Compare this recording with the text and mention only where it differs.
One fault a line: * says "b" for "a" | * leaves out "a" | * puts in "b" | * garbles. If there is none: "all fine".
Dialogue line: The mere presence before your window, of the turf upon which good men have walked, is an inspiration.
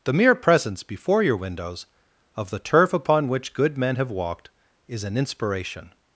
* says "windows" for "window"